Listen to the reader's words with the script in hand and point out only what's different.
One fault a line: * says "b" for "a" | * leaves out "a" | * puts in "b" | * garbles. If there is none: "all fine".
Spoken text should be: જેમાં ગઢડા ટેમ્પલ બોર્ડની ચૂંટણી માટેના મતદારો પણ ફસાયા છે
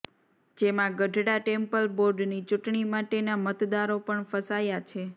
all fine